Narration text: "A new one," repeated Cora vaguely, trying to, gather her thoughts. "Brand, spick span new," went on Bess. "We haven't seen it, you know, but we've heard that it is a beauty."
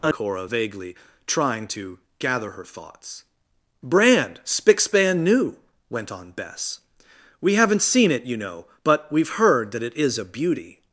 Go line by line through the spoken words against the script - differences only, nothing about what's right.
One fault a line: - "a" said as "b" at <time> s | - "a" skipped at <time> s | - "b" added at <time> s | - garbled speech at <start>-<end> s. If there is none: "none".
- "new one repeated" skipped at 0.1 s